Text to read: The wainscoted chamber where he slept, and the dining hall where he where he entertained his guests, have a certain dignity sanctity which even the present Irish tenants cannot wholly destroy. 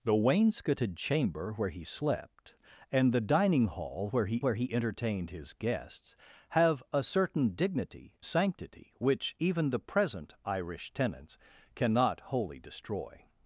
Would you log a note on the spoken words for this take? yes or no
no